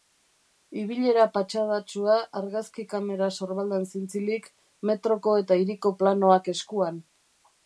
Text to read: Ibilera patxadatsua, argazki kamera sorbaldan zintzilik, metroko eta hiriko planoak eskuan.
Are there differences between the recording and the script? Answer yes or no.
no